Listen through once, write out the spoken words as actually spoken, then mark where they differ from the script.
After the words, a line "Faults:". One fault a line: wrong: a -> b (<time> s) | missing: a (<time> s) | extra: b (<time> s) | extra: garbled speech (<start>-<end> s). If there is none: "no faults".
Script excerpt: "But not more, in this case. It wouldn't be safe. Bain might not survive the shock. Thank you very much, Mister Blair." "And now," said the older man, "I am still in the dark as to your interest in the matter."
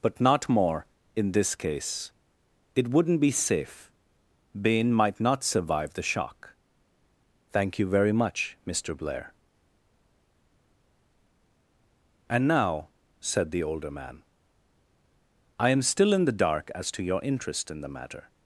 "But not more, in this case. It wouldn't be safe. Bain might not survive the shock. Thank you very much, Mister Blair." "And now," said the older man, "I am still in the dark as to your interest in the matter."
Faults:
no faults